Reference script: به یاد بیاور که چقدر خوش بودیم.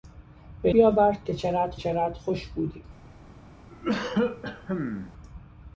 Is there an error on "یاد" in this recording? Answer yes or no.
yes